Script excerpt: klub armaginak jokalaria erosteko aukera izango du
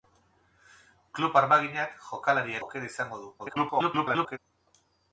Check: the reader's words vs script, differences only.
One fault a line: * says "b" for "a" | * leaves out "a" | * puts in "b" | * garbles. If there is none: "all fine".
* leaves out "erosteko"
* garbles